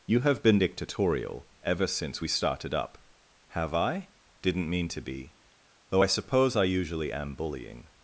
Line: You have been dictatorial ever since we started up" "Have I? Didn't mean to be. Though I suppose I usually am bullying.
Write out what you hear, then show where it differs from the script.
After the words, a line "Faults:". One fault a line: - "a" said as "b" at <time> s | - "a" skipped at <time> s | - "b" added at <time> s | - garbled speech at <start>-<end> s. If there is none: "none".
You have been dictatorial ever since we started up" "Have I? Didn't mean to be. Though I suppose I usually am bullying.
Faults:
none